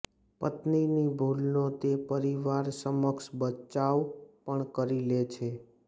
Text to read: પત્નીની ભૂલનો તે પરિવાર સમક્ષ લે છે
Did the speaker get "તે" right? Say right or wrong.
right